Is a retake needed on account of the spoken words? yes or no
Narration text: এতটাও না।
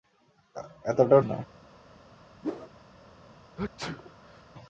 no